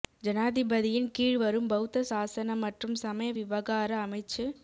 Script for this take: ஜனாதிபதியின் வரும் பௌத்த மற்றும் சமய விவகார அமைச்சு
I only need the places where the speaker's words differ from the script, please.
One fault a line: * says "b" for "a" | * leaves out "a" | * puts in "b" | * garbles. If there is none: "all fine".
* puts in "கீழ்"
* puts in "சாசன"